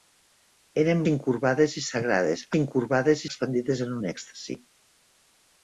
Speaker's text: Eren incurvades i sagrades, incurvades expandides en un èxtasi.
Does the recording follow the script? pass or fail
pass